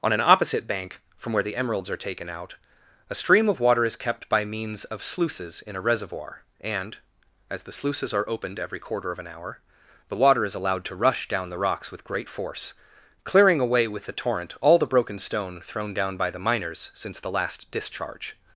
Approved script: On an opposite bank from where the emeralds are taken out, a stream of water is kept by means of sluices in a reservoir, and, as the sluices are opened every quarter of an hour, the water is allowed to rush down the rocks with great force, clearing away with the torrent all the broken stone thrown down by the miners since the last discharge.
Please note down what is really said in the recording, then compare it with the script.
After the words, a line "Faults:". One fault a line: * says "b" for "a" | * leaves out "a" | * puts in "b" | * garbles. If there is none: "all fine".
On an opposite bank from where the emeralds are taken out, a stream of water is kept by means of sluices in a reservoir, and, as the sluices are opened every quarter of an hour, the water is allowed to rush down the rocks with great force, clearing away with the torrent all the broken stone thrown down by the miners since the last discharge.
Faults:
all fine